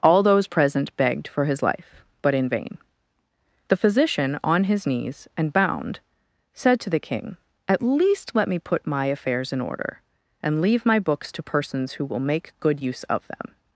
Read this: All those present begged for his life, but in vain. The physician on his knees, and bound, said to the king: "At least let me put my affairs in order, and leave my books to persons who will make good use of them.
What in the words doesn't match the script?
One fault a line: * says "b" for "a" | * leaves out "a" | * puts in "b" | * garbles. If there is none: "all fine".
all fine